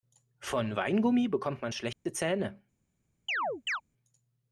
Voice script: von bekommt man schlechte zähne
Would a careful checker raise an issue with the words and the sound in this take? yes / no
yes